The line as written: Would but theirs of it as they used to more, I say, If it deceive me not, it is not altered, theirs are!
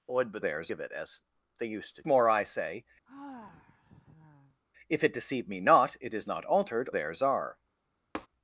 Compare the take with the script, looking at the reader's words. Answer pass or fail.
pass